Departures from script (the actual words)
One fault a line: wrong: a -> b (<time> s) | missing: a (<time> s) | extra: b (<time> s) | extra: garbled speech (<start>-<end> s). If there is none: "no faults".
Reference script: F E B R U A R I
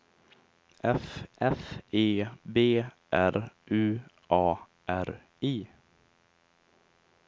extra: f (1.4 s)